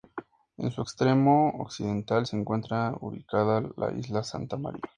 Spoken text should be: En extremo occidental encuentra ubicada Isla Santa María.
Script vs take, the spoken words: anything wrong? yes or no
yes